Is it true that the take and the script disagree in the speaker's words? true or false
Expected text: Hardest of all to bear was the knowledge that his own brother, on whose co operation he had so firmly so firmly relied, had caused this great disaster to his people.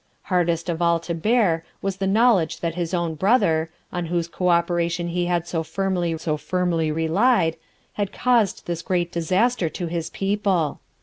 false